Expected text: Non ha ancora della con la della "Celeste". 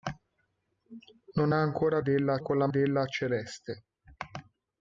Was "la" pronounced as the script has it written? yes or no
yes